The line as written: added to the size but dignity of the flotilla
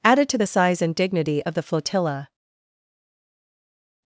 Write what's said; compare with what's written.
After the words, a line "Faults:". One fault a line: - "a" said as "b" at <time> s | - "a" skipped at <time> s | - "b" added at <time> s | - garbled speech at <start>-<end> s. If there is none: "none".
added to the size and dignity of the flotilla
Faults:
- "but" said as "and" at 0.8 s